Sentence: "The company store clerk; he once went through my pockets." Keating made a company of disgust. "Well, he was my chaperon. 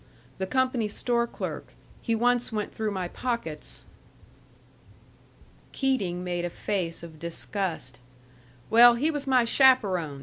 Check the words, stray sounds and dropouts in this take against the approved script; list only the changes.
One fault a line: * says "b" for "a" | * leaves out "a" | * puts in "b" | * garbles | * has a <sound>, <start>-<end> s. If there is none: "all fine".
* says "face" for "company"